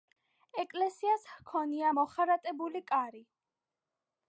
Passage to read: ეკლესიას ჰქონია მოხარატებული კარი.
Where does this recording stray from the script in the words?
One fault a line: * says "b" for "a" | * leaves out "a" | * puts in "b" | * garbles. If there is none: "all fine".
all fine